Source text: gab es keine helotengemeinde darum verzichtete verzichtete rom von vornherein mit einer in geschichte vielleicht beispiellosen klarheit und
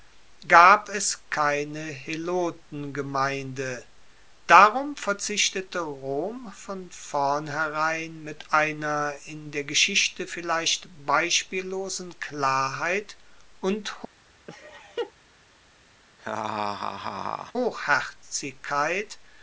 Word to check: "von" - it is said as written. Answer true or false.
true